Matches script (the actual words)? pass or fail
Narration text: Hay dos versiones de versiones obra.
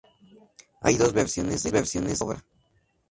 pass